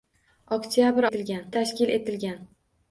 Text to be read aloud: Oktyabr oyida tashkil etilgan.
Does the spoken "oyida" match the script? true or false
false